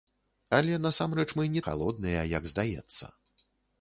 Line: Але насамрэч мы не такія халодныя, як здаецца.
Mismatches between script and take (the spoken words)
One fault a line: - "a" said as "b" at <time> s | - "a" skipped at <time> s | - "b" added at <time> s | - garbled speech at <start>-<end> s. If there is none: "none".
- "такія" skipped at 1.6 s